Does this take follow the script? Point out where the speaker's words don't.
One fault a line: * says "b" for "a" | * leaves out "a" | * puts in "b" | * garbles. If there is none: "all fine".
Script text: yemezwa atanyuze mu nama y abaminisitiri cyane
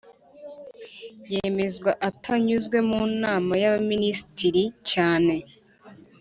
all fine